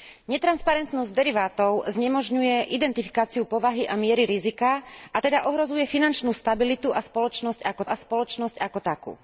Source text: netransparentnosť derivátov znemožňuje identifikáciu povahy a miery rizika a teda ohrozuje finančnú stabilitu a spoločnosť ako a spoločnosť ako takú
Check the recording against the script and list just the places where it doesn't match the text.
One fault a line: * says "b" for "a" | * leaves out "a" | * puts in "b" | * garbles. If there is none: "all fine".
all fine